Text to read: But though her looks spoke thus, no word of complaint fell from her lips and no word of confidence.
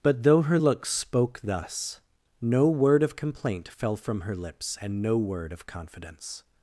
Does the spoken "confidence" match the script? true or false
true